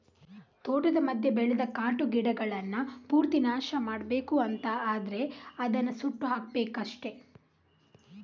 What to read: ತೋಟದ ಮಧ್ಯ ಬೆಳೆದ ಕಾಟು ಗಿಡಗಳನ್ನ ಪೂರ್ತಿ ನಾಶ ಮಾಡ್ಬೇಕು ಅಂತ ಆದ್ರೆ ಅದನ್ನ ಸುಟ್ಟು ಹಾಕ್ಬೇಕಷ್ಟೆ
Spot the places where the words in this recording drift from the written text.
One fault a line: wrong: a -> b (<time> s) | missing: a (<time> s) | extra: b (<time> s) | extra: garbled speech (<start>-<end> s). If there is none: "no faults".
no faults